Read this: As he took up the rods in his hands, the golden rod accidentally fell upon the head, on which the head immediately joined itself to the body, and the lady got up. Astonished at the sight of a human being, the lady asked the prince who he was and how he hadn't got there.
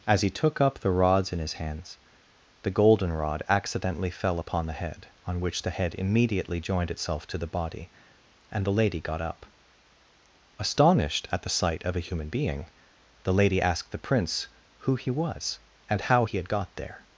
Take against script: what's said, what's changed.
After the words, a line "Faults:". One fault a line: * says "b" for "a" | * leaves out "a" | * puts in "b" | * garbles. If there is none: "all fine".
As he took up the rods in his hands, the golden rod accidentally fell upon the head, on which the head immediately joined itself to the body, and the lady got up. Astonished at the sight of a human being, the lady asked the prince who he was and how he had got there.
Faults:
* says "had" for "hadn't"